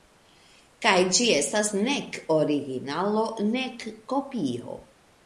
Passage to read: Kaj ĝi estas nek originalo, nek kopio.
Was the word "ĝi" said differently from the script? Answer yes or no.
no